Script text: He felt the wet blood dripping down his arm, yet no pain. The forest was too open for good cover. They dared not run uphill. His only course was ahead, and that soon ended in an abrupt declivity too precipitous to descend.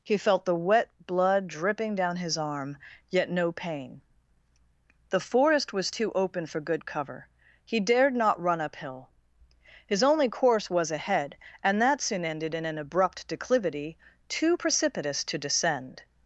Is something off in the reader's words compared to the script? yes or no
yes